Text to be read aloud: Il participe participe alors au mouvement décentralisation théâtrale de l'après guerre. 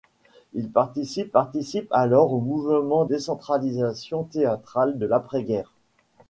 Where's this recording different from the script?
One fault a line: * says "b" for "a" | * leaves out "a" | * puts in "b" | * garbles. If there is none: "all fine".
all fine